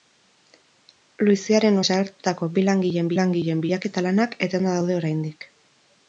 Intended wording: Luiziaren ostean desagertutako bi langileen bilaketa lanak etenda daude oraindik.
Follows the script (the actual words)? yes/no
no